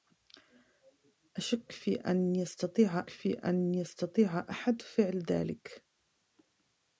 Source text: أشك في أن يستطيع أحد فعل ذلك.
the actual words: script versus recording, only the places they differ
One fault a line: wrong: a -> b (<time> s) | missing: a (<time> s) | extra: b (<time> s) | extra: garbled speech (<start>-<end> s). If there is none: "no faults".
extra: في أن يستطيع (3.1 s)